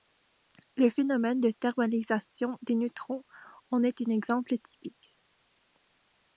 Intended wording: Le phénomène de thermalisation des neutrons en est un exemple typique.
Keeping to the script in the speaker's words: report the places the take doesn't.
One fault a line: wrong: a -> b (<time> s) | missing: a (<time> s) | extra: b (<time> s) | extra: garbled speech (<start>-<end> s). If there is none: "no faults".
no faults